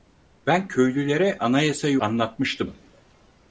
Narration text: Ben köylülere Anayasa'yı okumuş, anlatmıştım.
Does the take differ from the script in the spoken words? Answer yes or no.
yes